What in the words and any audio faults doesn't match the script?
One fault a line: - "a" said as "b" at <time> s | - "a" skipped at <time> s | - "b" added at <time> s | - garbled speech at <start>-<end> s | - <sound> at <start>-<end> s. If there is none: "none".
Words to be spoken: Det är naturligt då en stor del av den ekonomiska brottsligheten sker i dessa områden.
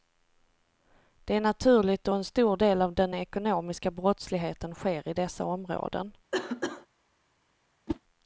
- cough at 6.3-6.9 s
- whoosh at 7.9-8.0 s